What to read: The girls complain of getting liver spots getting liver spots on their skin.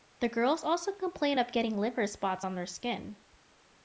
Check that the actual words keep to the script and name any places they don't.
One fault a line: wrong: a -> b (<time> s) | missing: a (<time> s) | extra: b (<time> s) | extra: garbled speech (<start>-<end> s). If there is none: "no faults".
extra: also (0.6 s)
missing: getting liver spots (2.5 s)